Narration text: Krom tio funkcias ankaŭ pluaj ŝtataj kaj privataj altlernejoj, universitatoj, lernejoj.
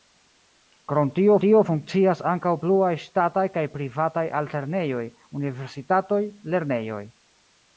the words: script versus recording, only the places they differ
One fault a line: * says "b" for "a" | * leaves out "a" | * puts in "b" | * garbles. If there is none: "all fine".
* puts in "tio"